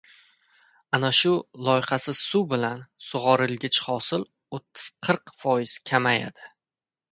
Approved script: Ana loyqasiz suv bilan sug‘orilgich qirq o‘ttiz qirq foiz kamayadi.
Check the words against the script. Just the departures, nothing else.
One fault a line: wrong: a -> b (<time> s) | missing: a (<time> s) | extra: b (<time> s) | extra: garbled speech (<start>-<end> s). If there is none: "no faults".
extra: shu (1.2 s)
wrong: qirq -> hosil (3.9 s)